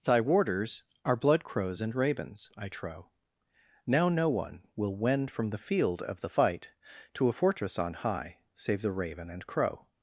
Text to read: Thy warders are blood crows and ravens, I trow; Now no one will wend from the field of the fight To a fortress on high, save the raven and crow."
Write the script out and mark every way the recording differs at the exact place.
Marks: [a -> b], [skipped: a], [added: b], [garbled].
Thy warders are blood crows and ravens, I trow; Now no one will wend from the field of the fight To a fortress on high, save the raven and crow."